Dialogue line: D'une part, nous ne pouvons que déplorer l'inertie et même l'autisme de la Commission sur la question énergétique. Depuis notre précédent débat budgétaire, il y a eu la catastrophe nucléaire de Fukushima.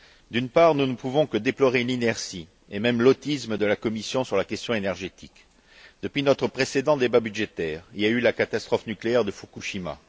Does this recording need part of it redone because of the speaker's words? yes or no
no